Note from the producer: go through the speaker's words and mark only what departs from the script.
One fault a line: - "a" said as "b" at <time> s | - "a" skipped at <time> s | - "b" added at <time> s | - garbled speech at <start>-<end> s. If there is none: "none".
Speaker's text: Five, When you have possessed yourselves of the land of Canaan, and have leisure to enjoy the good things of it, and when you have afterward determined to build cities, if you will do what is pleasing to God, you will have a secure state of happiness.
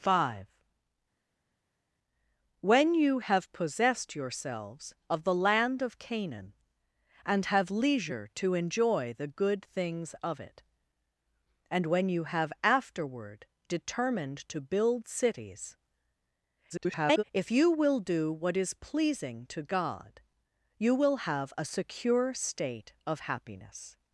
- garbled speech at 16.7-17.2 s